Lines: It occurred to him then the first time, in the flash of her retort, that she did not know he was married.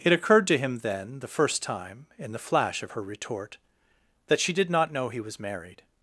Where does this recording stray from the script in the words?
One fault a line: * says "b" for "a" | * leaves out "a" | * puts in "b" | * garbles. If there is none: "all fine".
all fine